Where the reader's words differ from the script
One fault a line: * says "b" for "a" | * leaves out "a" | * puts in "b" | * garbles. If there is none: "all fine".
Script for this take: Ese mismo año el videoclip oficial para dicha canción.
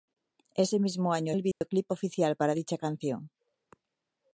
all fine